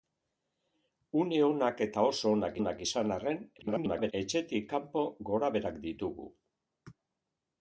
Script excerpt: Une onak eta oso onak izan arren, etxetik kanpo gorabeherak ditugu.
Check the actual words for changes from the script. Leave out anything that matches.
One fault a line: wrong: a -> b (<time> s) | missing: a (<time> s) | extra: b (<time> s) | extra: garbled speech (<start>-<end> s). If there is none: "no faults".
extra: onak (2.6 s)
extra: garbled speech (3.6-4.1 s)